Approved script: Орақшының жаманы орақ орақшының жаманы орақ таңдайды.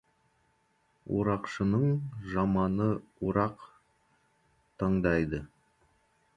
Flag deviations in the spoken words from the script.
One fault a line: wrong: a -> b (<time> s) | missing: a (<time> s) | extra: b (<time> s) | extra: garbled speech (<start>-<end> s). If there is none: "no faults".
missing: орақшының жаманы орақ (3.7 s)